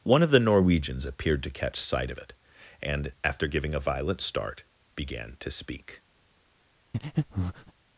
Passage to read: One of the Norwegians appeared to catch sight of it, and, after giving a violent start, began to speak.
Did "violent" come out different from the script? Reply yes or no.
no